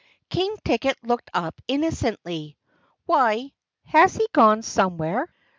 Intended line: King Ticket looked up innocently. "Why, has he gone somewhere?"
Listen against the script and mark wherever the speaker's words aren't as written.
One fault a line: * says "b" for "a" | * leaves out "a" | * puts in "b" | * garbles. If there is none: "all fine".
all fine